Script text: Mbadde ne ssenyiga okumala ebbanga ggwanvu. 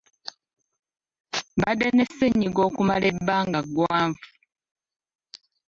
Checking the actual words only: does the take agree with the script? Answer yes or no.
yes